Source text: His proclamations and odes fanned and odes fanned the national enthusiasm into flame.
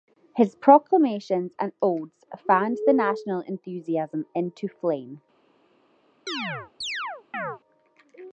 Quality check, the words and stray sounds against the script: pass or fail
fail